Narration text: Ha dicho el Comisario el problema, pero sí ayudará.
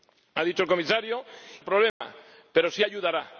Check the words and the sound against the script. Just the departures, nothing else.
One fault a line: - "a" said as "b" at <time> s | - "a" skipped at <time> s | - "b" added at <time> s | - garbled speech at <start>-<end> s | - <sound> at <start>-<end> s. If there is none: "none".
- dropout at 1.9-2.0 s